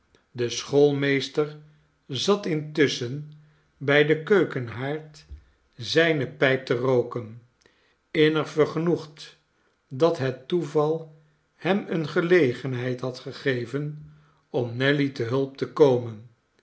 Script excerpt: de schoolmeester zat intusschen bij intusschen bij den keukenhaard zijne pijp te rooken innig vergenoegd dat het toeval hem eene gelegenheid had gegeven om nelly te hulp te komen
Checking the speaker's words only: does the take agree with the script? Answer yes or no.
no